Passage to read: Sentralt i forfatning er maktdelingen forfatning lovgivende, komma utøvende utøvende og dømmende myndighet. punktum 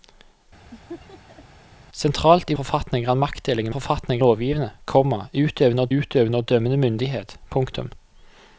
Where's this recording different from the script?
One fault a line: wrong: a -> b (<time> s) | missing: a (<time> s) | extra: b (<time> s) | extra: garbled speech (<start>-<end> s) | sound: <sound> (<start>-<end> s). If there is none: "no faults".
sound: laugh (0.7-1.4 s)